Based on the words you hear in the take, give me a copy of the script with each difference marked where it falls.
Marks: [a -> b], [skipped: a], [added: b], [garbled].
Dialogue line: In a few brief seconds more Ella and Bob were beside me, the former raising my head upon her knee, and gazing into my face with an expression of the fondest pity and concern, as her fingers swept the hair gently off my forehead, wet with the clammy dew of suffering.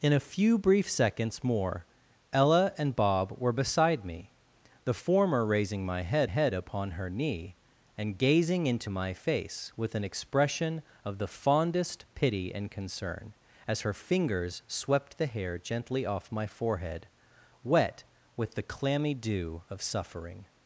In a few brief seconds more Ella and Bob were beside me, the former raising my head [added: head] upon her knee, and gazing into my face with an expression of the fondest pity and concern, as her fingers swept the hair gently off my forehead, wet with the clammy dew of suffering.